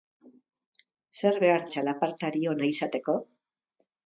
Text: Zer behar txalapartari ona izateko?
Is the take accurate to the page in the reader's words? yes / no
yes